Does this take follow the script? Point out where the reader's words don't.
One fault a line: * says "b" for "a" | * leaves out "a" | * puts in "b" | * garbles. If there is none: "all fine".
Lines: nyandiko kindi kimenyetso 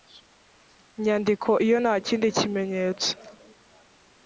* puts in "iyo nta"